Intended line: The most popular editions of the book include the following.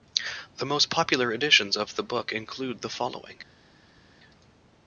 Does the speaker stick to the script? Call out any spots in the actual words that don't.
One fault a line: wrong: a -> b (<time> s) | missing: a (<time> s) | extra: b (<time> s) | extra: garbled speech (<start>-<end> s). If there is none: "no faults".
no faults